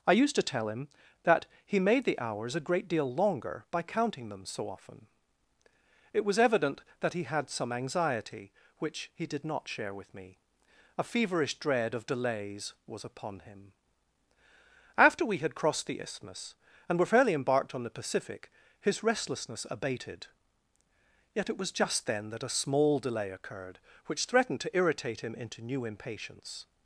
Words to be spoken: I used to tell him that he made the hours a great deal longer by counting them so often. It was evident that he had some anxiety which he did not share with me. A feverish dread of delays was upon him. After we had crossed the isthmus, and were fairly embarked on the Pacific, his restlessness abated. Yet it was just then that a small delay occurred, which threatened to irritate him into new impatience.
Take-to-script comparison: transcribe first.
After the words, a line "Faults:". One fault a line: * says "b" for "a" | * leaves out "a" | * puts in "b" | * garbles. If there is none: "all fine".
I used to tell him that he made the hours a great deal longer by counting them so often. It was evident that he had some anxiety which he did not share with me. A feverish dread of delays was upon him. After we had crossed the isthmus, and were fairly embarked on the Pacific, his restlessness abated. Yet it was just then that a small delay occurred, which threatened to irritate him into new impatience.
Faults:
all fine